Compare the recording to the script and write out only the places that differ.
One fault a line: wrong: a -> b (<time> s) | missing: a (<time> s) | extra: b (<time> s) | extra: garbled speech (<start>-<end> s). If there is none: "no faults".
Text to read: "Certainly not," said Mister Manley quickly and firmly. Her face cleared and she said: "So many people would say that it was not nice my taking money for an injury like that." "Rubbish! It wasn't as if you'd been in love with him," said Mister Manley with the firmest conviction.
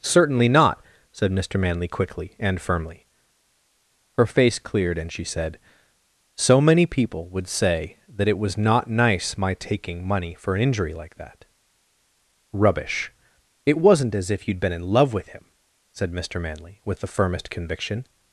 no faults